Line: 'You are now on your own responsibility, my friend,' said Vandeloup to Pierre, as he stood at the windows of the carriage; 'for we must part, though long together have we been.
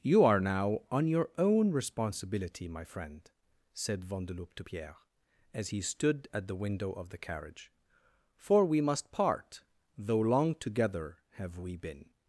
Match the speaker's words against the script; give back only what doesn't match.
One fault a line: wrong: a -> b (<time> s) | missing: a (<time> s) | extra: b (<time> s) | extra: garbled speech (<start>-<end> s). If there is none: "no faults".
wrong: windows -> window (6.6 s)